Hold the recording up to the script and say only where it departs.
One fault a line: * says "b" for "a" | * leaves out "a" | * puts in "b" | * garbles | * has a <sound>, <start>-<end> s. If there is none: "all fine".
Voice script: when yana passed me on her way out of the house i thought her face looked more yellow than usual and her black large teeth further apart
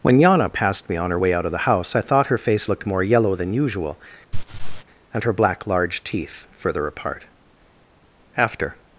* has a laugh, 4.3-4.8 s
* puts in "after"